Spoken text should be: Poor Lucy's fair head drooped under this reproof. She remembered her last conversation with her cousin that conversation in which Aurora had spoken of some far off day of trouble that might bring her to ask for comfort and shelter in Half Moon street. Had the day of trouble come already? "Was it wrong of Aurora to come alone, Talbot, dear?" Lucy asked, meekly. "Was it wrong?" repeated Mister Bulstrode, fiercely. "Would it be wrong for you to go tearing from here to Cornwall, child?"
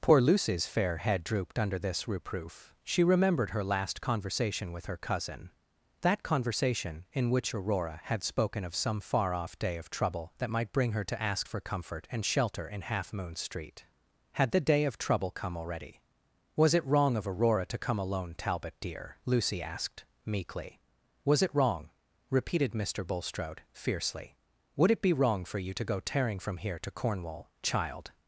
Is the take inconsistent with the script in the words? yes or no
no